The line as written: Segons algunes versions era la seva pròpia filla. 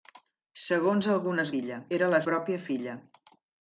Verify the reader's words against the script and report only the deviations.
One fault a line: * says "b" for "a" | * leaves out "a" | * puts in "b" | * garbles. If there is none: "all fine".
* says "filla" for "versions"
* leaves out "seva"